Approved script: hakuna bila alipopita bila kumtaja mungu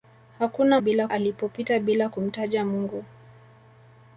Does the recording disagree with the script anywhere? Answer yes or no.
no